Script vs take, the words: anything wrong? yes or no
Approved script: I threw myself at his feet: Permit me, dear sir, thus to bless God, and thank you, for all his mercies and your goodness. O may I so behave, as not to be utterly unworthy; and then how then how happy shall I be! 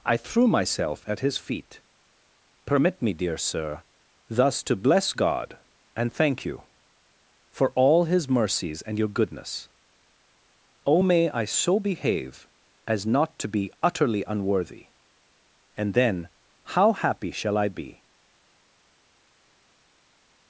yes